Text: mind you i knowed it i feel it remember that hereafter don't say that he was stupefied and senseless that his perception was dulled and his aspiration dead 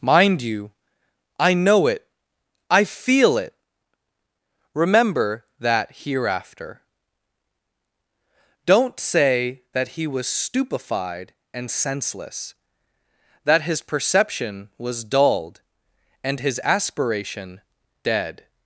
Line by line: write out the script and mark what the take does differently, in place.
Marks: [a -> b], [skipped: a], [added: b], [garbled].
mind you i [knowed -> know] it i feel it remember that hereafter don't say that he was stupefied and senseless that his perception was dulled and his aspiration dead